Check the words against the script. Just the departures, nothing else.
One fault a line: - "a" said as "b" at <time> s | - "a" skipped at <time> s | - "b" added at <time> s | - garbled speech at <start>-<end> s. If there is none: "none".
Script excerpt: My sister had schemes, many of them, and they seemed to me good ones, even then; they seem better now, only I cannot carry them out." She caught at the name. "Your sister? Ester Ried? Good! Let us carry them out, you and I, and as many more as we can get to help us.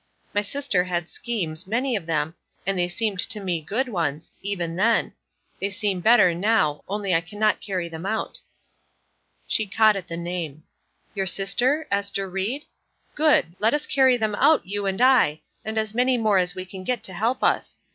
none